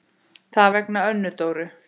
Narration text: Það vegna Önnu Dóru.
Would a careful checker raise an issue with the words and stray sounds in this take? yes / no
no